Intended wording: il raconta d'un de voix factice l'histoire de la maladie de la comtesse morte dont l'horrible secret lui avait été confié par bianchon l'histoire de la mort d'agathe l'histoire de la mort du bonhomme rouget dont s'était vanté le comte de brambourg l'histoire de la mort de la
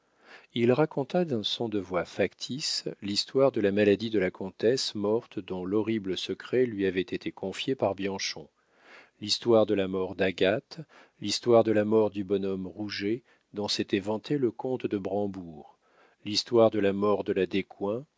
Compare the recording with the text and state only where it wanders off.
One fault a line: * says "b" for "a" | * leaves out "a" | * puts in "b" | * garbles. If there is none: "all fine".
* puts in "son"